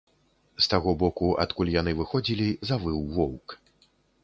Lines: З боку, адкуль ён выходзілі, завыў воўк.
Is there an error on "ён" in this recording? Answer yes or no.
yes